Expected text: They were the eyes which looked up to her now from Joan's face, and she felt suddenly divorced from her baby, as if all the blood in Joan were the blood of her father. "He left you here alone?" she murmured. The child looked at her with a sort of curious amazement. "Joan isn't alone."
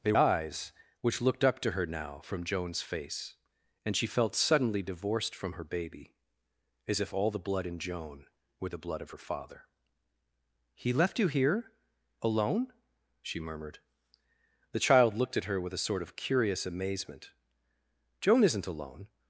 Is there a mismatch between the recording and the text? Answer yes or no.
yes